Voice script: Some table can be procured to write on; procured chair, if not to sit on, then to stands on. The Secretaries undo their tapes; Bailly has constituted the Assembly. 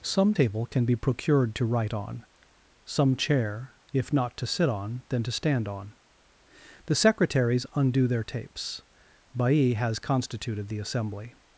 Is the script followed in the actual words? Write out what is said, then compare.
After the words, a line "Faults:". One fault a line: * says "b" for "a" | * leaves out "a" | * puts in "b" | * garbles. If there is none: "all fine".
Some table can be procured to write on; some chair, if not to sit on, then to stand on. The Secretaries undo their tapes; Bailly has constituted the Assembly.
Faults:
* says "some" for "procured"
* says "stand" for "stands"